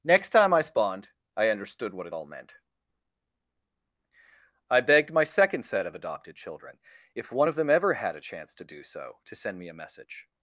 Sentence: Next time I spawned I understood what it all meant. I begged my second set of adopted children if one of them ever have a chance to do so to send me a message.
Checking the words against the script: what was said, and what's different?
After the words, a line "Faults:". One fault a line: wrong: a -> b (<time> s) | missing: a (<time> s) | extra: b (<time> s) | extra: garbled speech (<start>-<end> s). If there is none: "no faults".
Next time I spawned I understood what it all meant. I begged my second set of adopted children if one of them ever had a chance to do so to send me a message.
Faults:
wrong: have -> had (7.9 s)